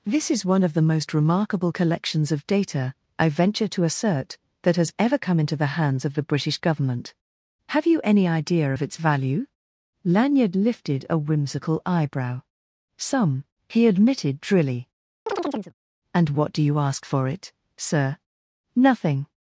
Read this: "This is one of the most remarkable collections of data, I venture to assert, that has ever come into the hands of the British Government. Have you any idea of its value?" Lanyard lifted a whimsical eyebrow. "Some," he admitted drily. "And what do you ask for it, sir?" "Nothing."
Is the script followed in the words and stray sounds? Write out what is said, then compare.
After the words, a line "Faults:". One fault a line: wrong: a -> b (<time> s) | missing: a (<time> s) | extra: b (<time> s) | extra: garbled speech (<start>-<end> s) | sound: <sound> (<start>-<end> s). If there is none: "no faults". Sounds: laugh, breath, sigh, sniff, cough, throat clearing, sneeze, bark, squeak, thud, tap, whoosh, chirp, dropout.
"This is one of the most remarkable collections of data, I venture to assert, that has ever come into the hands of the British Government. Have you any idea of its value?" Lanyard lifted a whimsical eyebrow. "Some," he admitted drily. "And what do you ask for it, sir?" "Nothing."
Faults:
sound: chirp (15.3-15.7 s)